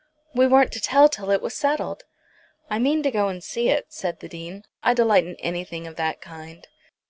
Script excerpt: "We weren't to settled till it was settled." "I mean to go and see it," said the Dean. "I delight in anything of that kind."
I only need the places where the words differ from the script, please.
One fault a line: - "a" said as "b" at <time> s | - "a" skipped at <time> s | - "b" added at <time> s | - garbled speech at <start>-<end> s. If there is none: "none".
- "settled" said as "tell" at 0.8 s